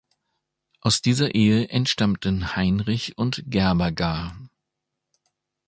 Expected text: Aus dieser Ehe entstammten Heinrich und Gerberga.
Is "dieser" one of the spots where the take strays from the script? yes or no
no